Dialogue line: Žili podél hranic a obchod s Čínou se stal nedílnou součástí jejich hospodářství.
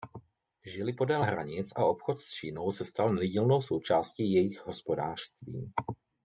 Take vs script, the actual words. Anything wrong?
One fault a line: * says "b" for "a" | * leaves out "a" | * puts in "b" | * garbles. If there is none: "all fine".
all fine